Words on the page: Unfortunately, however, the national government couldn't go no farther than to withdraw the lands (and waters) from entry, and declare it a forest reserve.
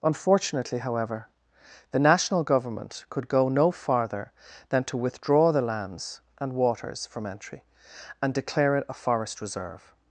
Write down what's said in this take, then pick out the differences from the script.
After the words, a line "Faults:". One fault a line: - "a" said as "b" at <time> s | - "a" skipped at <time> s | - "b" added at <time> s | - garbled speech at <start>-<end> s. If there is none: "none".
Unfortunately, however, the national government could go no farther than to withdraw the lands (and waters) from entry, and declare it a forest reserve.
Faults:
- "couldn't" said as "could" at 3.1 s